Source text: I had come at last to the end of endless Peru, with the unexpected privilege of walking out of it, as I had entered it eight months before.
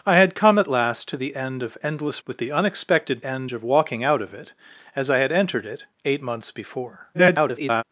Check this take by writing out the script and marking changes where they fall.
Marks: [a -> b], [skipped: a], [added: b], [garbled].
I had come at last to the end of endless [skipped: Peru,] with the unexpected [privilege -> end] of walking out of it, as I had entered it eight months before. [garbled]